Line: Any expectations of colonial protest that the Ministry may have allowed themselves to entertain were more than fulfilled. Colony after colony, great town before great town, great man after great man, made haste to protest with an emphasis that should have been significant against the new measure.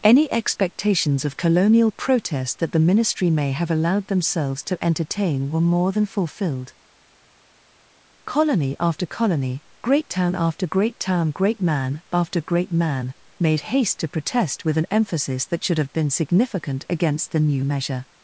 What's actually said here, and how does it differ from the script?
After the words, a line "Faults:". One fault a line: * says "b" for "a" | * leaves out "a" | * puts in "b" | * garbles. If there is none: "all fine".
Any expectations of colonial protest that the Ministry may have allowed themselves to entertain were more than fulfilled. Colony after colony, great town after great town, great man after great man, made haste to protest with an emphasis that should have been significant against the new measure.
Faults:
* says "after" for "before"